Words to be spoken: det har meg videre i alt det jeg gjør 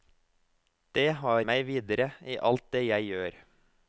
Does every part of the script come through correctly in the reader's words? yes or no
yes